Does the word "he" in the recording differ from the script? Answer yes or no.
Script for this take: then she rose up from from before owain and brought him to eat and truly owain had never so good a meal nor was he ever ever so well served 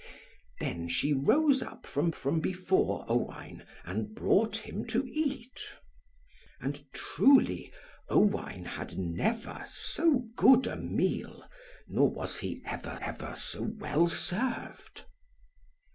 no